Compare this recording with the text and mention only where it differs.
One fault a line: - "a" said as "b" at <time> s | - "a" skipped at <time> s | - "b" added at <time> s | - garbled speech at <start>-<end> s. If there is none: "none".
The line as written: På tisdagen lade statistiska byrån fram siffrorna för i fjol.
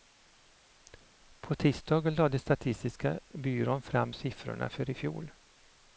none